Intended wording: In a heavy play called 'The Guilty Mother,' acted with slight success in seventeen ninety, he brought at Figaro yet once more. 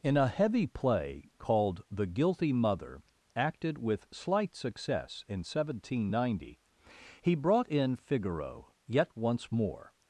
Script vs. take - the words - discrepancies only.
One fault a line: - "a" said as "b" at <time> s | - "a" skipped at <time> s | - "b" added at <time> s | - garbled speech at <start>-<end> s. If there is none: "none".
- "at" said as "in" at 7.7 s